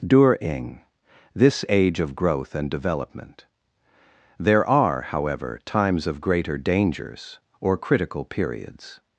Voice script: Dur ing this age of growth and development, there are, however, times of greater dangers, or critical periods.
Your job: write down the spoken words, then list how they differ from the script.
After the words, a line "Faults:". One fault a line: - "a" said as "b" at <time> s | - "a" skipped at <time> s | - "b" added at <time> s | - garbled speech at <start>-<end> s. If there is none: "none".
Dur ing this age of growth and development, there are, however, times of greater dangers, or critical periods.
Faults:
none